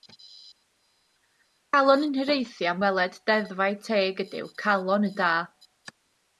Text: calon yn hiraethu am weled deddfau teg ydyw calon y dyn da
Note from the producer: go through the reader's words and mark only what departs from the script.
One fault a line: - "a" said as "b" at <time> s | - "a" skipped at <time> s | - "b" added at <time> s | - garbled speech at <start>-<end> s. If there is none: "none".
- "dyn" skipped at 5.1 s